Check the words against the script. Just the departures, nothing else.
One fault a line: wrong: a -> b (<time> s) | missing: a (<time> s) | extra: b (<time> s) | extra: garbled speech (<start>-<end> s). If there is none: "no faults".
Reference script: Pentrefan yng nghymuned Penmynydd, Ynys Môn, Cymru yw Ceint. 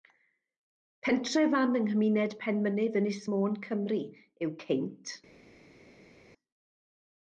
no faults